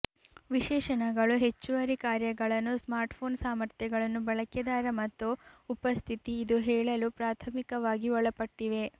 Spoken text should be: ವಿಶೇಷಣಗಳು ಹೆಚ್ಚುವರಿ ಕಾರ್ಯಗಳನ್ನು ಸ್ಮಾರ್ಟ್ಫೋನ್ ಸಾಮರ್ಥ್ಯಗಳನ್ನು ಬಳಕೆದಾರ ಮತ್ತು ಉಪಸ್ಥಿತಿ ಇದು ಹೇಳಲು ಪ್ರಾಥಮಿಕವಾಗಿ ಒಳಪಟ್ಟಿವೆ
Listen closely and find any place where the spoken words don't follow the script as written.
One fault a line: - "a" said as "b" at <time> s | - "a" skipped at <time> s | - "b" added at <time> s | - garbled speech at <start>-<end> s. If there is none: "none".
none